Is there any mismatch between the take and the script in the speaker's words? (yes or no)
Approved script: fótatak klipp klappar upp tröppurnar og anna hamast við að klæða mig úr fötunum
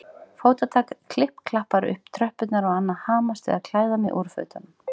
no